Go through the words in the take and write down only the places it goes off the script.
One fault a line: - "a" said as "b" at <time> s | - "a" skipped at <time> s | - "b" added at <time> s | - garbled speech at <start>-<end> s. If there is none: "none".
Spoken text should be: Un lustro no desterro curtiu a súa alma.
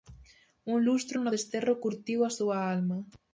none